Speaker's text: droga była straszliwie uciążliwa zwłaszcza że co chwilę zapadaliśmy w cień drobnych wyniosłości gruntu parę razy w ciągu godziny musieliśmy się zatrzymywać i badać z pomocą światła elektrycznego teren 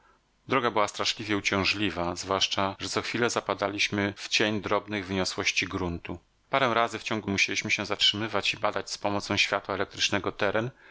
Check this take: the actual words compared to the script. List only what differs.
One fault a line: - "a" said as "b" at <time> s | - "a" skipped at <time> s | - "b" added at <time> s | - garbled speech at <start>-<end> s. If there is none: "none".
- "godziny" skipped at 7.3 s